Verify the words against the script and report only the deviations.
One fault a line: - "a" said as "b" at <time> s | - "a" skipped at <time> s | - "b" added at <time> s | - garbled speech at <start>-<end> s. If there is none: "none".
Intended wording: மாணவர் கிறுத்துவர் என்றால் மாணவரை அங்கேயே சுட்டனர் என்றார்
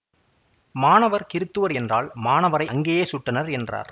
none